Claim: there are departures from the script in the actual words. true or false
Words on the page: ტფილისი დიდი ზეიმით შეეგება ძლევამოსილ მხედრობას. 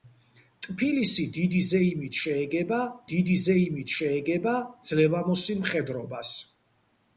true